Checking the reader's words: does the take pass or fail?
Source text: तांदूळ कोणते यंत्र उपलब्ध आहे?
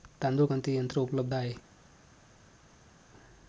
pass